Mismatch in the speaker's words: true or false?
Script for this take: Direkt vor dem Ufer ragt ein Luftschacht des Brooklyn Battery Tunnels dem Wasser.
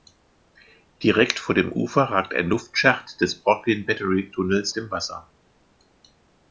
false